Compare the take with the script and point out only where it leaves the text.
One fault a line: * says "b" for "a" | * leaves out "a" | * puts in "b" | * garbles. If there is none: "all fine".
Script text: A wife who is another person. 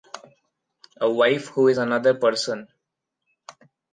all fine